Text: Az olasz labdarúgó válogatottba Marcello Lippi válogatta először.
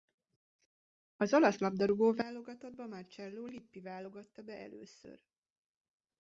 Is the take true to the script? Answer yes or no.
no